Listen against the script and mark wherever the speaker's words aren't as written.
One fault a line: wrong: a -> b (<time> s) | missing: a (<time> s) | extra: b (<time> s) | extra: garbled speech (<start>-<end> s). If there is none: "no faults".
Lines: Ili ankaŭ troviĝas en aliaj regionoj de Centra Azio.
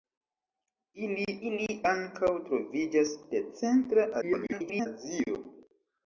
extra: ili (1.5 s)
missing: en aliaj regionoj (3.1 s)
extra: garbled speech (4.2-4.9 s)